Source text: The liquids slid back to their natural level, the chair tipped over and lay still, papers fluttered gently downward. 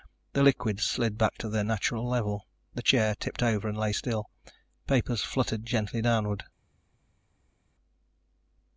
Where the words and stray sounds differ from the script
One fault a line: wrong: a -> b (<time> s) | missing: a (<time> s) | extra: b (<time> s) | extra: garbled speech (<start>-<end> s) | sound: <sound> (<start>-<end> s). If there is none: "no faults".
no faults